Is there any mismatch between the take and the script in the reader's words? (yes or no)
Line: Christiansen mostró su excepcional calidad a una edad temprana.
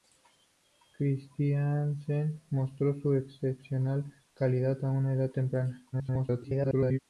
yes